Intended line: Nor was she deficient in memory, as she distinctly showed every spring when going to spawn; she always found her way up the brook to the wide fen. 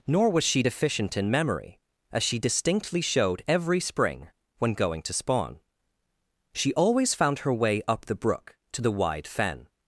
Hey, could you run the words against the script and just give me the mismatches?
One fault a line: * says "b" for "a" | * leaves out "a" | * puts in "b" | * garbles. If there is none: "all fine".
all fine